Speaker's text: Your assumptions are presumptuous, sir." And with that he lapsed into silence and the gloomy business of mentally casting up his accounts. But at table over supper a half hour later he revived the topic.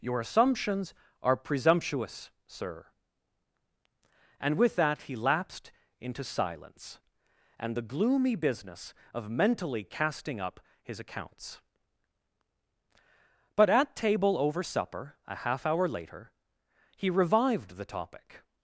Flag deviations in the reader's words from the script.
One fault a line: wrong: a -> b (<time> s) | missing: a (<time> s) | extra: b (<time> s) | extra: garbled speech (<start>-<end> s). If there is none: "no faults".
no faults